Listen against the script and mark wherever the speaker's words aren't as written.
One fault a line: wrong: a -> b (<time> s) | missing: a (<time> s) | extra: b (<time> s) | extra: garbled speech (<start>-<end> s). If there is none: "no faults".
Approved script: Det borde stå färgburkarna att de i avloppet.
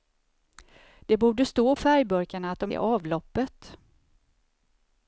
no faults